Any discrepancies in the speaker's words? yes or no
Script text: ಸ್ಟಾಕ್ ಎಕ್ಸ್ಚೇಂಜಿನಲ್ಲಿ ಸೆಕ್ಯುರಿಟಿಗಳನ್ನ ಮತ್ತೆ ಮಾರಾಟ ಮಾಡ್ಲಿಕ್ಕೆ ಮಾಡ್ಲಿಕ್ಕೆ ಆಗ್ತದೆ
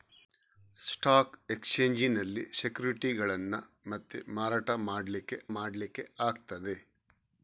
no